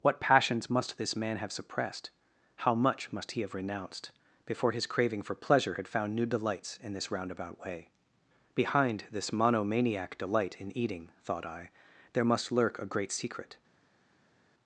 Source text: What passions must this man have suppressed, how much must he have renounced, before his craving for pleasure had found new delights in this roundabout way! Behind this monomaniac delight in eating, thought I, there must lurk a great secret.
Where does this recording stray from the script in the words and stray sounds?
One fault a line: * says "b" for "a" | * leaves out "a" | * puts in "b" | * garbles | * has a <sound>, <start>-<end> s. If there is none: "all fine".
all fine